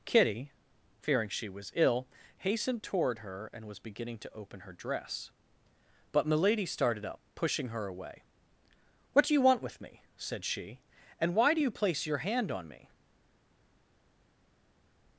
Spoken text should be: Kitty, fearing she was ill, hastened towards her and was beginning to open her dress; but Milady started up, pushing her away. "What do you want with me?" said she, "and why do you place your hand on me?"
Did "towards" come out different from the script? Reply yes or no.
yes